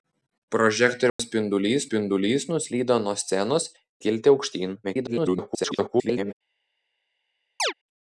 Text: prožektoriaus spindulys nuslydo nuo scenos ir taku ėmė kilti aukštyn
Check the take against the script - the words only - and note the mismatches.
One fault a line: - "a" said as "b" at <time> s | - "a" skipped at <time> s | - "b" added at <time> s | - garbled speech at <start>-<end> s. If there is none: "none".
- "spindulys" added at 1.9 s
- "ir taku ėmė" skipped at 3.7 s
- garbled speech at 4.8-6.3 s